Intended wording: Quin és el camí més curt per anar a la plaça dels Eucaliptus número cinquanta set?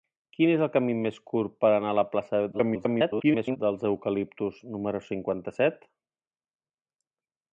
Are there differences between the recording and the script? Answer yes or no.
yes